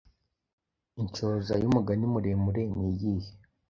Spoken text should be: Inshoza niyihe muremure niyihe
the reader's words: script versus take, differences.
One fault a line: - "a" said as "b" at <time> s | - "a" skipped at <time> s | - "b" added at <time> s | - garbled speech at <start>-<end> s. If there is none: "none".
- "niyihe" said as "y'umugani" at 1.6 s